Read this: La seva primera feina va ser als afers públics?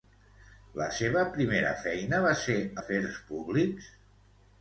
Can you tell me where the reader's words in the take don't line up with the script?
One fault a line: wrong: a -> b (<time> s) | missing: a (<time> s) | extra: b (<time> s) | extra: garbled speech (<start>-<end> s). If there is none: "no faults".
missing: als (2.6 s)